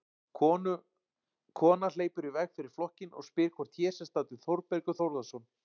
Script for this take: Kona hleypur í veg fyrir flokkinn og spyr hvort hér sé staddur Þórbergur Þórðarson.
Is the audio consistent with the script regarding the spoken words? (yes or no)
yes